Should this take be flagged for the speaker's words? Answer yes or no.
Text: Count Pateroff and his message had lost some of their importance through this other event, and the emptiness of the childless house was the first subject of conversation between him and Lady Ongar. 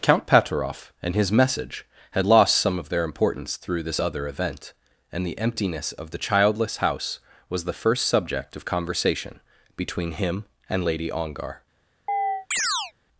no